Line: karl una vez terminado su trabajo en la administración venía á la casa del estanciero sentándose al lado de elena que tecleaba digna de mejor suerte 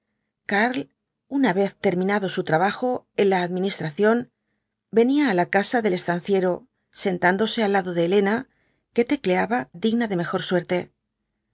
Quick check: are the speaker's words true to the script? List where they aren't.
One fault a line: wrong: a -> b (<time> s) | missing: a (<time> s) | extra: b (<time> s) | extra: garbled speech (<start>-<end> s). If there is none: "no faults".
no faults